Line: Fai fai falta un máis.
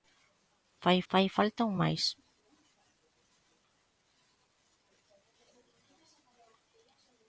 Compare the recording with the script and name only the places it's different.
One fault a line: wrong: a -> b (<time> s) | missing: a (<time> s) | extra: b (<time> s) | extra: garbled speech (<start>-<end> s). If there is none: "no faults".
no faults